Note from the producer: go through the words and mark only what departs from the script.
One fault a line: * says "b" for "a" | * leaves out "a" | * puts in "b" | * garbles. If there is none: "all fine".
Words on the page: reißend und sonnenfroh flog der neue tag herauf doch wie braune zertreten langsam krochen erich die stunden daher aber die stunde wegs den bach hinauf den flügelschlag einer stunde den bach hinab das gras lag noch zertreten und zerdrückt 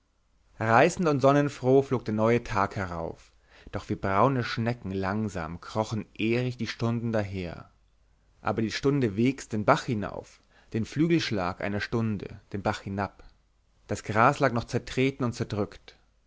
* says "schnecken" for "zertreten"